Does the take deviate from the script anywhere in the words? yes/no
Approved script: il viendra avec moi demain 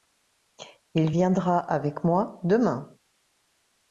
no